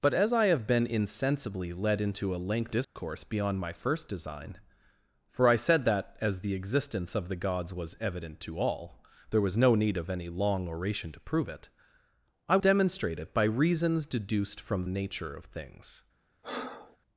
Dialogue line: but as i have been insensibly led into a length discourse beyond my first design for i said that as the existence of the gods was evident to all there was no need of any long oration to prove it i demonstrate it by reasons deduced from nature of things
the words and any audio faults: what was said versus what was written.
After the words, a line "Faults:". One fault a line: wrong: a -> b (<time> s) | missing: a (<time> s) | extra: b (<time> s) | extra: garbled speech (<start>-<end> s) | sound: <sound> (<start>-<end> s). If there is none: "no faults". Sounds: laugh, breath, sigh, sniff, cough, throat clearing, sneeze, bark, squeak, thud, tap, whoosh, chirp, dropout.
but as i have been insensibly led into a length discourse beyond my first design for i said that as the existence of the gods was evident to all there was no need of any long oration to prove it i demonstrate it by reasons deduced from nature of things
Faults:
sound: dropout (2.8-3.0 s)
sound: breath (16.4-17.0 s)